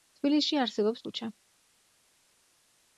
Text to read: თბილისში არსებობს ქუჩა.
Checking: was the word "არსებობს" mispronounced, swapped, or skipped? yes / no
no